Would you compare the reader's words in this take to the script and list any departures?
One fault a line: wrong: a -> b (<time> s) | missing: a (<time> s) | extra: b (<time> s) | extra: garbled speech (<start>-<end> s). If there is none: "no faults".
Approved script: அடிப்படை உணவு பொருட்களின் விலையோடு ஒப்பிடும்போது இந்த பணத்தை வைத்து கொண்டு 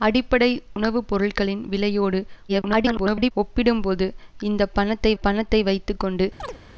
extra: garbled speech (2.5-3.3 s)
extra: பணத்தை (5.2 s)